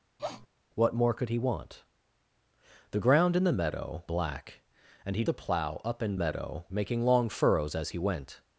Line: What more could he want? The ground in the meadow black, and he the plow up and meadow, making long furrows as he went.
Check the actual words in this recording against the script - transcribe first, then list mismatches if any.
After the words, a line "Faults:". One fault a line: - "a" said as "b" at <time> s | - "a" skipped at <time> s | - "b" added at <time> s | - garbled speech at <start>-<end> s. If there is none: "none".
What more could he want? The ground in the meadow black, and he the plow up and meadow, making long furrows as he went.
Faults:
none